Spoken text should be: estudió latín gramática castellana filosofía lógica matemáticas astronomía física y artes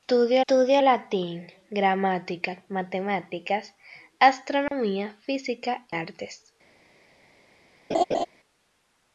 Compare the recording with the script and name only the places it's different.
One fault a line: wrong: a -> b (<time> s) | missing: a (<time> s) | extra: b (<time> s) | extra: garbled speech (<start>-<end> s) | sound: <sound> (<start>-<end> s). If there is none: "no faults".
extra: estudió (0.4 s)
missing: castellana filosofía lógica (2.6 s)
sound: dropout (4.7-4.7 s)
missing: y (5.8 s)
sound: laugh (7.9-8.3 s)